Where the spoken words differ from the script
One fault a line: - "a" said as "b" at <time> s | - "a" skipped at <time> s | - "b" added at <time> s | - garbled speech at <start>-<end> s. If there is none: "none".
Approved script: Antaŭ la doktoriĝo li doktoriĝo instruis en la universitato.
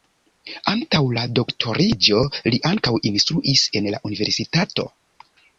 - "doktoriĝo" said as "ankaŭ" at 2.7 s